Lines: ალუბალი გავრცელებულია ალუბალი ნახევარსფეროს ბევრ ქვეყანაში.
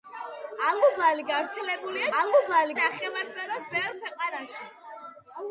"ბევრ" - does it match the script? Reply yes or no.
yes